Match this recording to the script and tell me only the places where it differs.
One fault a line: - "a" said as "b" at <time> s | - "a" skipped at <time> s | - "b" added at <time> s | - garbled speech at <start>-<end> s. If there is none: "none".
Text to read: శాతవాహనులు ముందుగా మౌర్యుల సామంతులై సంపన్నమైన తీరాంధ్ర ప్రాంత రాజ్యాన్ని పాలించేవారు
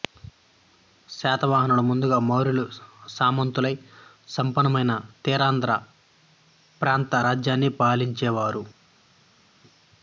none